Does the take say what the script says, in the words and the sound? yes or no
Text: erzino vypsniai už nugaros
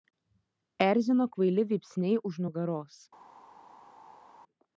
no